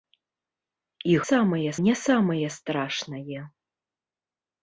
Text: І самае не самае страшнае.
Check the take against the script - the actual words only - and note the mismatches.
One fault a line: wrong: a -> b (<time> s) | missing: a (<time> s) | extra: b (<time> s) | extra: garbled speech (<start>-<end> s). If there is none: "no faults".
no faults